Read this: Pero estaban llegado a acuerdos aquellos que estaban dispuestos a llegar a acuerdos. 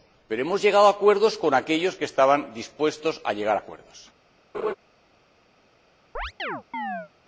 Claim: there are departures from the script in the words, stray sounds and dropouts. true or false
true